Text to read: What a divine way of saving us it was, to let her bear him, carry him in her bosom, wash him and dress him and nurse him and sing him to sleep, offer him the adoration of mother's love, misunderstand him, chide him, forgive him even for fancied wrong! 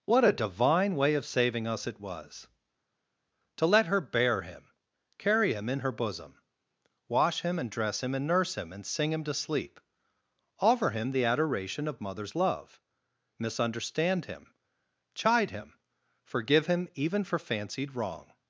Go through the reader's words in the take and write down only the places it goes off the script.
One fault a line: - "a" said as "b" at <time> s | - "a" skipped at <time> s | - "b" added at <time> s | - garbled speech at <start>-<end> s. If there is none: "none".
none